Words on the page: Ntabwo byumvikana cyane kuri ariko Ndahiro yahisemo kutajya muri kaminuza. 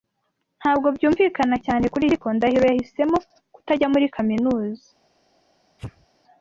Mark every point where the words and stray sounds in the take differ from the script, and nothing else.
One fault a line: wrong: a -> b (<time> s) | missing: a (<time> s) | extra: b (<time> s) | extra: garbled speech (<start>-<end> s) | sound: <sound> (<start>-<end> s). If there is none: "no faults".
sound: sneeze (5.8-6.1 s)